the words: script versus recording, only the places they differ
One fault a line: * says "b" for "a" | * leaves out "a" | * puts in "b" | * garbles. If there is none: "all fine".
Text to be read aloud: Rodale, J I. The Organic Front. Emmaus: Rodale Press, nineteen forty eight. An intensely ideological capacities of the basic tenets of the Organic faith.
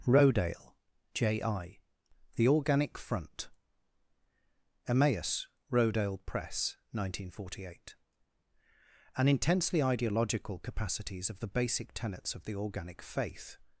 all fine